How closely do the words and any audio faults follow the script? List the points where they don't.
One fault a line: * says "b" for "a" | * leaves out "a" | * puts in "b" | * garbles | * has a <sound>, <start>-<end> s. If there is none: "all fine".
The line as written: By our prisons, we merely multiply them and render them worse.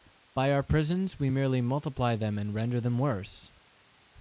all fine